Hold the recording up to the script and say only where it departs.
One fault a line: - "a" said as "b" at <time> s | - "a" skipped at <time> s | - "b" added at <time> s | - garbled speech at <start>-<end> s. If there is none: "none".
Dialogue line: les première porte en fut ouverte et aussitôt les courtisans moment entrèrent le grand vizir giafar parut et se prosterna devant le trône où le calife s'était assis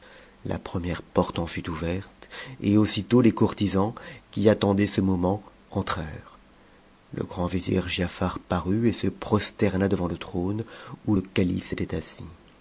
- "les" said as "la" at 0.5 s
- "qui attendaient ce" added at 4.3 s